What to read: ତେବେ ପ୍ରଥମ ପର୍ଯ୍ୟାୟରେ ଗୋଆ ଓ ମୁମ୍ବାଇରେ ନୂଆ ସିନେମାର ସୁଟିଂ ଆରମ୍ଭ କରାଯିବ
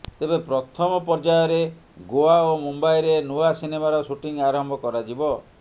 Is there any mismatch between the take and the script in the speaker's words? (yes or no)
no